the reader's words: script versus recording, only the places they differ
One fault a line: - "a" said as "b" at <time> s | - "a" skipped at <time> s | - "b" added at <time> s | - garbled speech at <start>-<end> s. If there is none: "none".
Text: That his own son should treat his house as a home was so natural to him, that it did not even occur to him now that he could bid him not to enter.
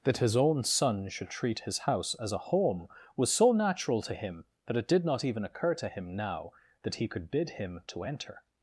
- "not" skipped at 7.8 s